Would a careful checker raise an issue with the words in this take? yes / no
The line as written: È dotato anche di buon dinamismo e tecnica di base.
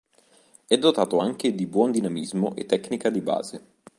no